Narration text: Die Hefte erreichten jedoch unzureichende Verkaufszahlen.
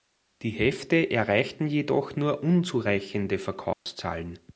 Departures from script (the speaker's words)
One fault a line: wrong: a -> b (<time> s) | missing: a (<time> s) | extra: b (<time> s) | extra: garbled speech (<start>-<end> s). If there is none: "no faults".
extra: nur (2.2 s)